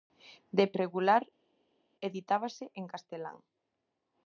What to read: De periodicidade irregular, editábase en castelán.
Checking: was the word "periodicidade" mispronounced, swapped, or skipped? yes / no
yes